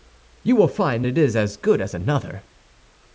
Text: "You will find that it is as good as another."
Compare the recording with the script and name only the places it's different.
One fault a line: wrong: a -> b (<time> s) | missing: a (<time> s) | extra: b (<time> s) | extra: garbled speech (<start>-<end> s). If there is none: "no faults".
missing: that (1.1 s)